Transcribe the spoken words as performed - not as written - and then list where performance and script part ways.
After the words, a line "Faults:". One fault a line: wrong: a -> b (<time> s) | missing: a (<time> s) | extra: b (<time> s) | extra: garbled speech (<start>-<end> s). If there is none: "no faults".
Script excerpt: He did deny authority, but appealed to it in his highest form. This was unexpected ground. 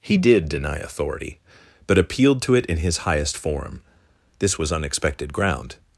He did deny authority, but appealed to it in his highest form. This was unexpected ground.
Faults:
no faults